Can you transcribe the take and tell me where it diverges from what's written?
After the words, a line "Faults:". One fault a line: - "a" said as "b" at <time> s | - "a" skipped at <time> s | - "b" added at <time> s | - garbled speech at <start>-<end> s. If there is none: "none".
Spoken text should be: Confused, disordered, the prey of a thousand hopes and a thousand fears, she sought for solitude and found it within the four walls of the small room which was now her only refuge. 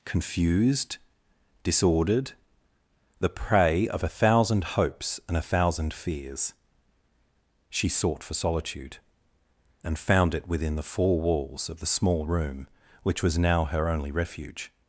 Confused, disordered, the prey of a thousand hopes and a thousand fears, she sought for solitude and found it within the four walls of the small room which was now her only refuge.
Faults:
none